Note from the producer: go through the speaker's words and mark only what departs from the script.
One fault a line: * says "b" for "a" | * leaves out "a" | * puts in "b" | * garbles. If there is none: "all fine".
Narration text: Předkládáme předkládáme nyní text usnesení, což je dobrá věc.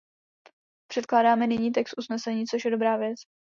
* leaves out "předkládáme"